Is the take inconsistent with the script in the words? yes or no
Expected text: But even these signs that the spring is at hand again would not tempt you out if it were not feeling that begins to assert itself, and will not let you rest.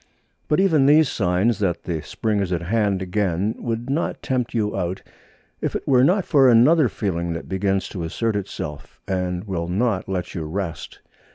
yes